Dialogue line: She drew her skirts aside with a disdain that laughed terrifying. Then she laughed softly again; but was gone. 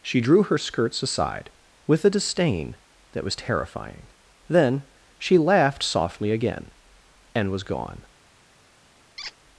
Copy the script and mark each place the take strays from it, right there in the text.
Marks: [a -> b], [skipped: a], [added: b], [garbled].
She drew her skirts aside with a disdain that [laughed -> was] terrifying. Then she laughed softly again; [but -> and] was gone.